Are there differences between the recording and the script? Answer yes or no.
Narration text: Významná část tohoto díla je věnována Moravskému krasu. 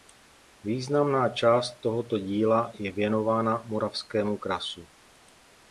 no